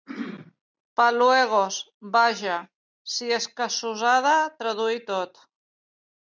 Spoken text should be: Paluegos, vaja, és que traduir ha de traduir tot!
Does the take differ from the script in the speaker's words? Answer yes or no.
yes